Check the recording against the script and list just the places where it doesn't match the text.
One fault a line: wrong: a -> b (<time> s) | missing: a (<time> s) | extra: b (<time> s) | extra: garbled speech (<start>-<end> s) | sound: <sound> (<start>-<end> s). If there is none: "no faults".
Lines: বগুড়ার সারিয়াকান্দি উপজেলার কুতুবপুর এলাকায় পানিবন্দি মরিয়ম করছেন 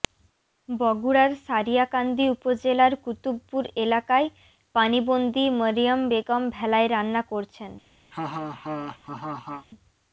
extra: বেগম ভেলায় রান্না (6.1 s)
sound: laugh (8.1-9.7 s)